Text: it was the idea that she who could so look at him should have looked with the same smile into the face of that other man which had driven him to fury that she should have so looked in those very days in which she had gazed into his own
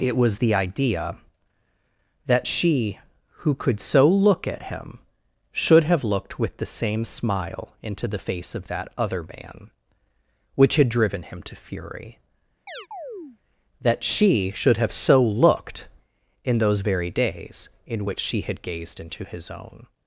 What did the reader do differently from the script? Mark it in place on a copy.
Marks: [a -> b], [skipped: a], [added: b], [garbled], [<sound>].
it was the idea that she who could so look at him should have looked with the same smile into the face of that other man which had driven him to fury [chirp] that she should have so looked in those very days in which she had gazed into his own